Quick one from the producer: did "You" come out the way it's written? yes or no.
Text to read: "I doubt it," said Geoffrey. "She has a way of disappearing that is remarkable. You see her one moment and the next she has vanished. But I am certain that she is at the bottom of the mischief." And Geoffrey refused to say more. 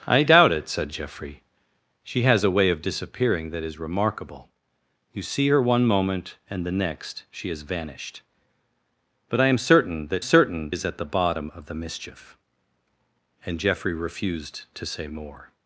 yes